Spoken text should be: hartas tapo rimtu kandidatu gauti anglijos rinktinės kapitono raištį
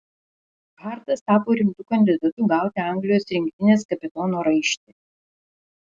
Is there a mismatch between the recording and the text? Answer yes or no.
no